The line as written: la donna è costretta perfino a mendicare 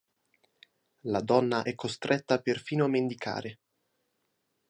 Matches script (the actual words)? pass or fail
pass